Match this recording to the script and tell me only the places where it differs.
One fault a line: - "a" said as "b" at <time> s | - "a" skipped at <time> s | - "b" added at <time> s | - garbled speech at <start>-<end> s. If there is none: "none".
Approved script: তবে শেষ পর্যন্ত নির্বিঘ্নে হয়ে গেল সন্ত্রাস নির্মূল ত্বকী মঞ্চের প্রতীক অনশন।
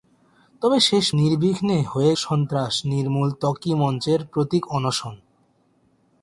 - "পর্যন্ত" skipped at 1.1 s
- "গেল" skipped at 2.1 s